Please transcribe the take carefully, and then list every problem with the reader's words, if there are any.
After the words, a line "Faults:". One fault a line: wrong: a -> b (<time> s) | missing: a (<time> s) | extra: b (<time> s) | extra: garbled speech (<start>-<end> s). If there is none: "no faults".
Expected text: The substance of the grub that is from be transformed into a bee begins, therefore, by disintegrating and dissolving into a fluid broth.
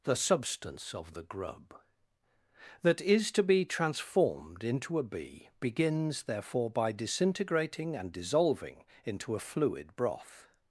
The substance of the grub that is to be transformed into a bee begins, therefore, by disintegrating and dissolving into a fluid broth.
Faults:
wrong: from -> to (3.3 s)